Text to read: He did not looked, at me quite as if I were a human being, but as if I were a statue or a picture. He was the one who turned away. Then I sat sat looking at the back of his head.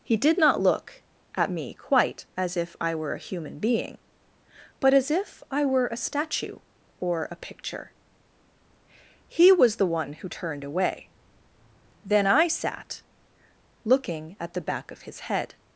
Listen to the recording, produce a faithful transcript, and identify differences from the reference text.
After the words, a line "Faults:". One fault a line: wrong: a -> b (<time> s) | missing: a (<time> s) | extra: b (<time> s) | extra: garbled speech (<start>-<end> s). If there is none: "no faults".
He did not look, at me quite as if I were a human being, but as if I were a statue or a picture. He was the one who turned away. Then I sat looking at the back of his head.
Faults:
wrong: looked -> look (0.6 s)
missing: sat (13.0 s)